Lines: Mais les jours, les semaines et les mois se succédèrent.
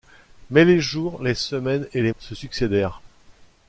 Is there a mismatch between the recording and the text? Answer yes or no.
yes